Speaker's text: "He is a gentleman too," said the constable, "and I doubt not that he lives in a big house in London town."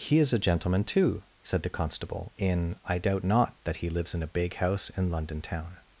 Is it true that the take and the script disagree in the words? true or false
true